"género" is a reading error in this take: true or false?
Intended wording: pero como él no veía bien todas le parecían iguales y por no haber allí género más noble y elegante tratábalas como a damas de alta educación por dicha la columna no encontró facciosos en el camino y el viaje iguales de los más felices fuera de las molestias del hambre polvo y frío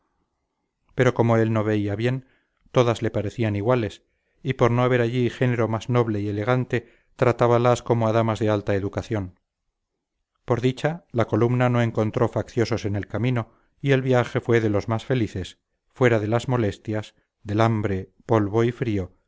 false